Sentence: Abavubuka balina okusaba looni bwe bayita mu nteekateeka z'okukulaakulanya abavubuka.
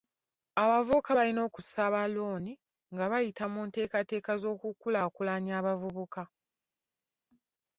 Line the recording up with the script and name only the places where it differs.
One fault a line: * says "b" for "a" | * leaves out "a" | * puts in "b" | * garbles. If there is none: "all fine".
* says "nga" for "bwe"